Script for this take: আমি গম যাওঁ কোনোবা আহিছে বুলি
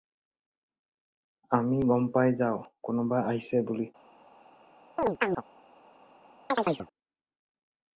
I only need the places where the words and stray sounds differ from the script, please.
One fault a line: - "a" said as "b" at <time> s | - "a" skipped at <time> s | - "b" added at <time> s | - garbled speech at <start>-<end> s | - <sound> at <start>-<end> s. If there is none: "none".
- "পাই" added at 2.1 s
- chirp at 5.0-5.4 s
- chirp at 6.5-6.9 s